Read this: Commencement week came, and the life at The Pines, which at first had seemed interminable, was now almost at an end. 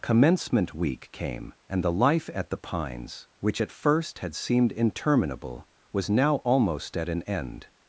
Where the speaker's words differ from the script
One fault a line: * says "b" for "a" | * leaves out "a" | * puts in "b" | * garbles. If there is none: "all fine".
all fine